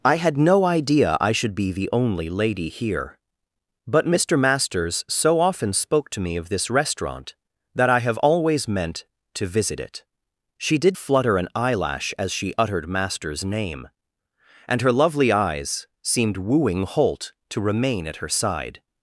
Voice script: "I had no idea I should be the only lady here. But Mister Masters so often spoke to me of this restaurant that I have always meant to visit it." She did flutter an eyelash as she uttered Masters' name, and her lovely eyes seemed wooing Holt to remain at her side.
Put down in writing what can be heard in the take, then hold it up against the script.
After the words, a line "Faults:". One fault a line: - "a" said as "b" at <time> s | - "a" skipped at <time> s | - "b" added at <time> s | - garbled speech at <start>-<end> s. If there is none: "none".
"I had no idea I should be the only lady here. But Mister Masters so often spoke to me of this restaurant that I have always meant to visit it." She did flutter an eyelash as she uttered Masters' name, and her lovely eyes seemed wooing Holt to remain at her side.
Faults:
none